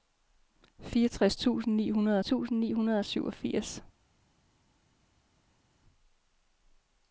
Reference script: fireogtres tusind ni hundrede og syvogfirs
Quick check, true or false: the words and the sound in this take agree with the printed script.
false